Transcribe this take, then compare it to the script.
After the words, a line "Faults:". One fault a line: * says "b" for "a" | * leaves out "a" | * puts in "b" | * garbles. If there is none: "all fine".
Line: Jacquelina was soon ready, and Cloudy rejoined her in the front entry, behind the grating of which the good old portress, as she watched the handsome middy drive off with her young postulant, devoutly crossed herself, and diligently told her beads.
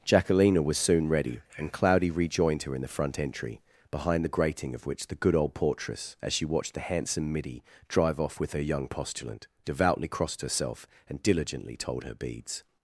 Jacquelina was soon ready, and Cloudy rejoined her in the front entry, behind the grating of which the good old portress, as she watched the handsome middy drive off with her young postulant, devoutly crossed herself, and diligently told her beads.
Faults:
all fine